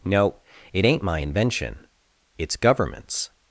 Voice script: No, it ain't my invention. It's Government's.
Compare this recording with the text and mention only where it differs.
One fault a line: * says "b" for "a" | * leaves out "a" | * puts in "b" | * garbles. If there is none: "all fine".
all fine